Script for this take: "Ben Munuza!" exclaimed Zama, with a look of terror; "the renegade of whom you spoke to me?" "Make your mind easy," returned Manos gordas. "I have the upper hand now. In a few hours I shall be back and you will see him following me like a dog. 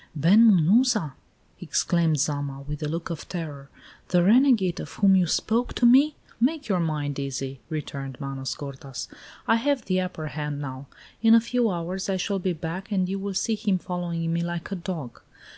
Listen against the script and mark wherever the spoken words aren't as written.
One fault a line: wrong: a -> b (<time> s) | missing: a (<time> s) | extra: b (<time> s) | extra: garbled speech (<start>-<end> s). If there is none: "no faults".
no faults